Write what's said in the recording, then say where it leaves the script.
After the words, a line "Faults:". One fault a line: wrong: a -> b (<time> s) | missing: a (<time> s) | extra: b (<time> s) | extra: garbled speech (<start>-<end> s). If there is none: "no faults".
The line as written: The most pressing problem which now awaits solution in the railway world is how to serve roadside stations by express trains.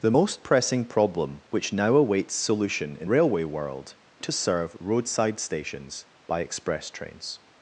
The most pressing problem which now awaits solution in railway world to serve roadside stations by express trains.
Faults:
missing: the (3.1 s)
missing: is how (3.9 s)